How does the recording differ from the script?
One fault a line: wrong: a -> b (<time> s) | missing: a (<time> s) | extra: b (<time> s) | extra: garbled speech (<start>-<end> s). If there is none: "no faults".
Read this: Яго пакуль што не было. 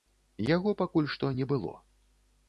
no faults